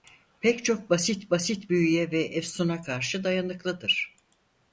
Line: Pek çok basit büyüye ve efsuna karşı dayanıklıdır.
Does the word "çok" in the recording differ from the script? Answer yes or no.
no